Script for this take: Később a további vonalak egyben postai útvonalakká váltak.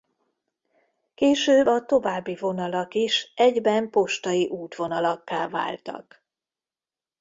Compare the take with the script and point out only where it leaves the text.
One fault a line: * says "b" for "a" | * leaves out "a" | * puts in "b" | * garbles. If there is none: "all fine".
* puts in "is"